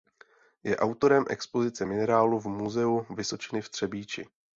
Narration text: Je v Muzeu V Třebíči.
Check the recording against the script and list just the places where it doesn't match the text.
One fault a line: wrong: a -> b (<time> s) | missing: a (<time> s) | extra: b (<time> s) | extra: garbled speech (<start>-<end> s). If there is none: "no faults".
extra: autorem expozice minerálů (0.8 s)
extra: Vysočiny (3.2 s)